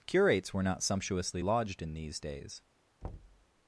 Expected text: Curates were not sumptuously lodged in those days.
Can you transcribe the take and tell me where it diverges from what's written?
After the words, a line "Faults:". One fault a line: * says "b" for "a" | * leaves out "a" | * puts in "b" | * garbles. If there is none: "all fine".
Curates were not sumptuously lodged in these days.
Faults:
* says "these" for "those"